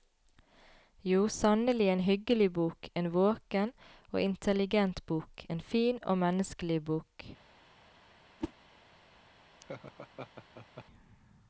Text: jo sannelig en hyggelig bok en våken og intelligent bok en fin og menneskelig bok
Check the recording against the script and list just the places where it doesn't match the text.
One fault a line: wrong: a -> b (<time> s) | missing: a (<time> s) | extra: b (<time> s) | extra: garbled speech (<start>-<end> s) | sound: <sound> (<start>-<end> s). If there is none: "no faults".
sound: whoosh (8.4-8.5 s)
sound: laugh (9.6-10.8 s)